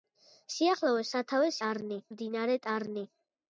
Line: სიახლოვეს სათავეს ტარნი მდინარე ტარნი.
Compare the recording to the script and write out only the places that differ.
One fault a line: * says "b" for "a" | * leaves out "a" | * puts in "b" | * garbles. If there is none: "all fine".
all fine